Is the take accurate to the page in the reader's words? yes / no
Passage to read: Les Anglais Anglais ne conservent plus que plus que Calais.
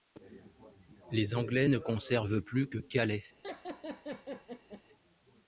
no